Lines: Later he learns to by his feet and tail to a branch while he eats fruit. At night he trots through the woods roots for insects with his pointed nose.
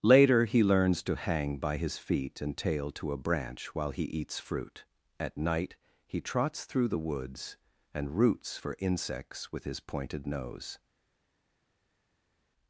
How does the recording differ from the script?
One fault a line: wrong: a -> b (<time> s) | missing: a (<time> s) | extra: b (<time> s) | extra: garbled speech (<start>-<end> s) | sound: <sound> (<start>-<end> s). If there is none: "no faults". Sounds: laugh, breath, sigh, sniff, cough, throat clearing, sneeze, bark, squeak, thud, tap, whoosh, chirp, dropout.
extra: hang (1.1 s)
extra: and (7.9 s)